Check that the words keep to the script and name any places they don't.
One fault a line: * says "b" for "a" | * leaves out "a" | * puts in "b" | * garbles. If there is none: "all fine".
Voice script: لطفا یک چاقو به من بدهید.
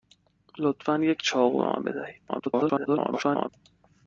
* garbles